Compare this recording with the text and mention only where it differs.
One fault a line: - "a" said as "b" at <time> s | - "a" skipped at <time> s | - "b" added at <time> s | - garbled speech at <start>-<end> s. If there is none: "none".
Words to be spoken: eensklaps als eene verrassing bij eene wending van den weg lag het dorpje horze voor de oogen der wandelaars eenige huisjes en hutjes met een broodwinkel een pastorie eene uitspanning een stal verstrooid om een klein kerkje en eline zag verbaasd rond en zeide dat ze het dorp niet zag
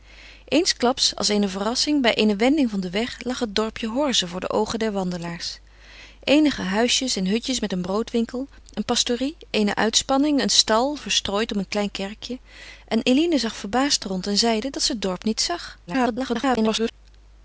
- garbled speech at 15.9-16.9 s